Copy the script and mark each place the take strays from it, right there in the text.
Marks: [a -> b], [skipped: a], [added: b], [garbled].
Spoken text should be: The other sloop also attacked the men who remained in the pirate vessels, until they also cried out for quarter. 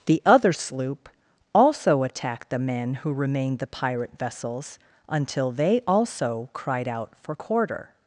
The other sloop also attacked the men who remained [skipped: in] the pirate vessels, until they also cried out for quarter.